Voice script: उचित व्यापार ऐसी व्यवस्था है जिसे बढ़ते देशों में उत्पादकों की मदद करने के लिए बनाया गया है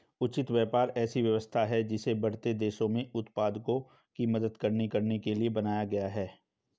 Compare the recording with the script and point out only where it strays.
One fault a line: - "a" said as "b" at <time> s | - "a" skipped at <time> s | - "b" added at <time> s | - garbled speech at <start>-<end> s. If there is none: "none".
- "करने" added at 4.9 s